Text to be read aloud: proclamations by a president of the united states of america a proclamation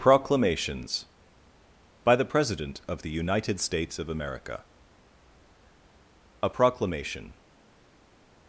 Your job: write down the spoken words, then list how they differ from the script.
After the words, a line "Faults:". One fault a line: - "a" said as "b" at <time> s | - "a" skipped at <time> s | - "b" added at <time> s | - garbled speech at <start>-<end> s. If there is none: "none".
proclamations by the president of the united states of america a proclamation
Faults:
- "a" said as "the" at 2.1 s